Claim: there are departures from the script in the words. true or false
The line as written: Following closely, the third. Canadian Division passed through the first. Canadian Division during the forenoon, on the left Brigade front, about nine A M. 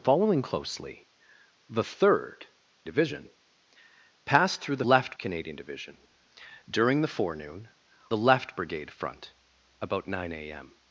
true